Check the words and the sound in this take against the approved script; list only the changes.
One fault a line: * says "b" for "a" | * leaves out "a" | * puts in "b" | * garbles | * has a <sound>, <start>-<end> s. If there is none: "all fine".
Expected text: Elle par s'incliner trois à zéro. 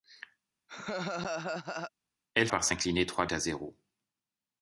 * has a laugh, 0.7-1.9 s